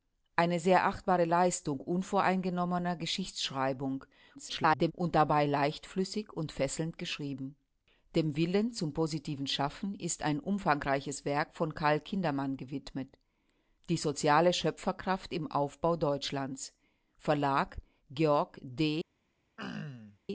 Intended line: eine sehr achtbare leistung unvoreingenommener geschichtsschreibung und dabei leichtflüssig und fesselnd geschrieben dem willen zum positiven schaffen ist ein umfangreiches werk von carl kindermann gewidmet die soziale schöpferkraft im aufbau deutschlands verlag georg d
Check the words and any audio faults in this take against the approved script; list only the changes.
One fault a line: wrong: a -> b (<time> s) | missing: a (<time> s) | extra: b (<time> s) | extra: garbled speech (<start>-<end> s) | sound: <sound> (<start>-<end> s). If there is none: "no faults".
extra: garbled speech (4.3-4.9 s)
sound: throat clearing (19.6-20.2 s)